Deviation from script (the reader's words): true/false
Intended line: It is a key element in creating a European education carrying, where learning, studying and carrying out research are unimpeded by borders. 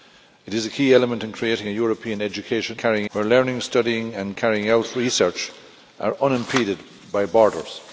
false